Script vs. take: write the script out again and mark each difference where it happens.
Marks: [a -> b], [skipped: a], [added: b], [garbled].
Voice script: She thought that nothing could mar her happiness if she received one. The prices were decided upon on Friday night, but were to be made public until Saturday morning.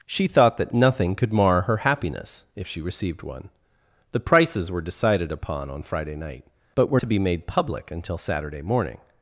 She thought that nothing could mar her happiness if she received one. The prices were decided upon on Friday night, but were to be made public until Saturday morning.